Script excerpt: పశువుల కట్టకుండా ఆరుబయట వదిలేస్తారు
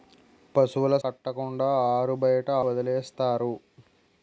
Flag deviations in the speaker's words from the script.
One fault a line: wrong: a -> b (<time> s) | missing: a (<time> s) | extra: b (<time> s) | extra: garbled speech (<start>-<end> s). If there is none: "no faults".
no faults